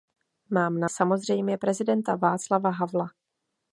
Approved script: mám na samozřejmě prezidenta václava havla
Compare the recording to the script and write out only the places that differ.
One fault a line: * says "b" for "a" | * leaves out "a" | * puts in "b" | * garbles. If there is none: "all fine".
all fine